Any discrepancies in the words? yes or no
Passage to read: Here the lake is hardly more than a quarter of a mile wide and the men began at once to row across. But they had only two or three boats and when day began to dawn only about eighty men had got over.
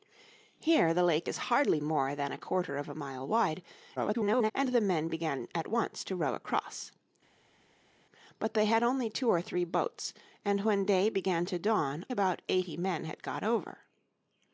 yes